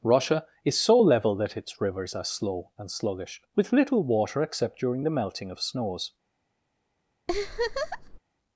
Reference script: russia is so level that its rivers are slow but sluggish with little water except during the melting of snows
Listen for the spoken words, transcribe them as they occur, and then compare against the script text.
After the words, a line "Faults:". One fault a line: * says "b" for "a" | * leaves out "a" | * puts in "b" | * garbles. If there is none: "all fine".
russia is so level that its rivers are slow and sluggish with little water except during the melting of snows
Faults:
* says "and" for "but"